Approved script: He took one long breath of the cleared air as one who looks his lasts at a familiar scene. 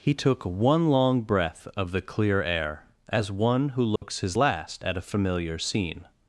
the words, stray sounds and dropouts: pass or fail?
fail